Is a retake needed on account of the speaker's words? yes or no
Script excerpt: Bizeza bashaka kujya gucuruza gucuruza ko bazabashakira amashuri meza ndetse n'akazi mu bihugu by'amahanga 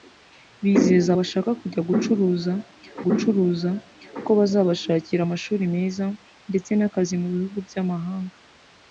no